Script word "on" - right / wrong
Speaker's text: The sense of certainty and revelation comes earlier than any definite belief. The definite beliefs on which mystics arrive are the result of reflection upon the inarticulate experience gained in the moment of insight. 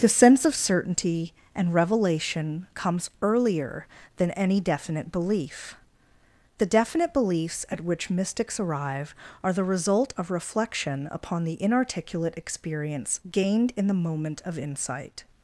wrong